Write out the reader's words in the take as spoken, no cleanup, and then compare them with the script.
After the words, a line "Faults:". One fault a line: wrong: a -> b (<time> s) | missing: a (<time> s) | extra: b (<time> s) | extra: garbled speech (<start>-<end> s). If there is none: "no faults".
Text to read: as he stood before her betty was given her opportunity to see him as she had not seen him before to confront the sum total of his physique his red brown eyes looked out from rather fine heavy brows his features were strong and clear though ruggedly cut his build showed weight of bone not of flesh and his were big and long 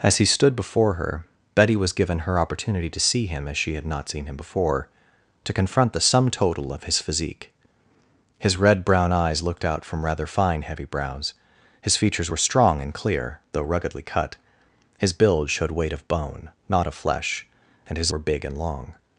as he stood before her betty was given her opportunity to see him as she had not seen him before to confront the sum total of his physique his red brown eyes looked out from rather fine heavy brows his features were strong and clear though ruggedly cut his build showed weight of bone not of flesh and his were big and long
Faults:
no faults